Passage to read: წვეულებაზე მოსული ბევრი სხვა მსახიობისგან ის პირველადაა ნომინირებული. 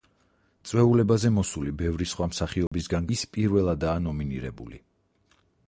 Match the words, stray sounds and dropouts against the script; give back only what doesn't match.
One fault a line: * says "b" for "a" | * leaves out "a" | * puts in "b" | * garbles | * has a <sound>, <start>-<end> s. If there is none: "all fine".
* has a dropout, 2.7-2.7 s